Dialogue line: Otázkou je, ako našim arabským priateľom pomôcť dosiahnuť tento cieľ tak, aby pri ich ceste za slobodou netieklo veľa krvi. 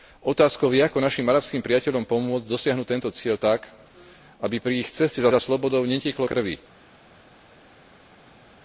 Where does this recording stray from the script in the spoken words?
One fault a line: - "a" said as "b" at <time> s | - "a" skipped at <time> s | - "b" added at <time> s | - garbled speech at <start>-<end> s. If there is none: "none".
- "za" added at 5.3 s
- "veľa" skipped at 6.3 s